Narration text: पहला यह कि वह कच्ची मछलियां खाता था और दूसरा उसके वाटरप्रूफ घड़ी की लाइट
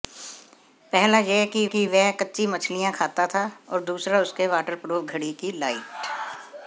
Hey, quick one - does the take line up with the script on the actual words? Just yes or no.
no